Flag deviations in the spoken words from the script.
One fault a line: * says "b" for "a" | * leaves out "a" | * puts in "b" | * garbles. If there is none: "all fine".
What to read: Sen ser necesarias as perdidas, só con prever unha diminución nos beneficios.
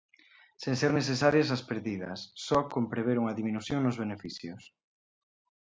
all fine